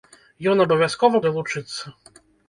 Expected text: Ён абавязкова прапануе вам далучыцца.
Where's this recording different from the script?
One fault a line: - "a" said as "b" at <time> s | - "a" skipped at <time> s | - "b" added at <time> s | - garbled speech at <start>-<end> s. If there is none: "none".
- "прапануе вам" skipped at 1.2 s